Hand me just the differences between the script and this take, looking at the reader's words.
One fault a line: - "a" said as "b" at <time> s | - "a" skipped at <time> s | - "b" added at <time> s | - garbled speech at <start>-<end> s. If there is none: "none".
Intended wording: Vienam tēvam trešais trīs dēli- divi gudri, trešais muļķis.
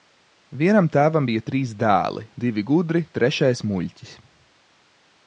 - "trešais" said as "bija" at 1.3 s